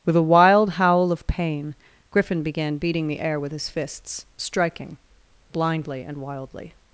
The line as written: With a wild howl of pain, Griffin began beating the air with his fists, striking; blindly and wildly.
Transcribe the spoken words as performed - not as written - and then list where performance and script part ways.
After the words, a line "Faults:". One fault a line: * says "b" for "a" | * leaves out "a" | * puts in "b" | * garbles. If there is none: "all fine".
With a wild howl of pain, Griffin began beating the air with his fists, striking; blindly and wildly.
Faults:
all fine